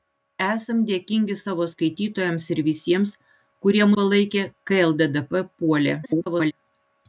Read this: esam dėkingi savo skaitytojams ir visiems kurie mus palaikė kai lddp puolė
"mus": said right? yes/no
no